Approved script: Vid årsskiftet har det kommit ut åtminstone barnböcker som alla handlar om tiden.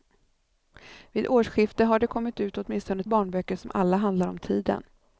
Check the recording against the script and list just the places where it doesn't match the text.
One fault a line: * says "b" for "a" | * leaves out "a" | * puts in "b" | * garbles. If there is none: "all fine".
all fine